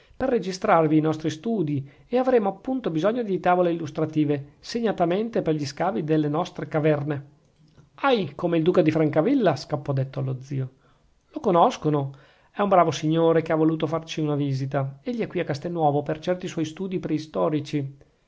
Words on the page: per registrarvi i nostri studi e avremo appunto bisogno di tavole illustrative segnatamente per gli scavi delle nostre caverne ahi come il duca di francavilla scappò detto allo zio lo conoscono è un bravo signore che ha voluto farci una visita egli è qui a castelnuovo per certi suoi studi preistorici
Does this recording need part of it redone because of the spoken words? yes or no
no